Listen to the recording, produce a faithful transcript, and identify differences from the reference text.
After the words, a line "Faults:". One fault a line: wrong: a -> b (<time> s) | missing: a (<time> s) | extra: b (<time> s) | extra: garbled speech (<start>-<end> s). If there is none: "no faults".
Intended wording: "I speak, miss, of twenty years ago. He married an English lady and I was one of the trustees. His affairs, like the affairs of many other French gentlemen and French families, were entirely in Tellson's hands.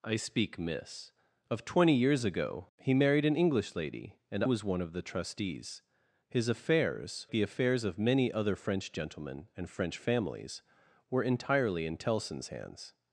"I speak, miss, of twenty years ago. He married an English lady and was one of the trustees. His affairs, the affairs of many other French gentlemen and French families, were entirely in Tellson's hands.
Faults:
missing: I (4.4 s)
missing: like (7.3 s)